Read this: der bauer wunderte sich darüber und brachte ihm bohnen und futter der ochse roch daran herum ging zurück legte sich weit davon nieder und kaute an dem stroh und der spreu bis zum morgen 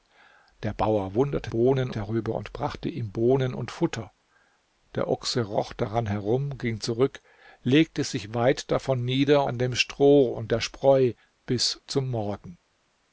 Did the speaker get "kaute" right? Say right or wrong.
wrong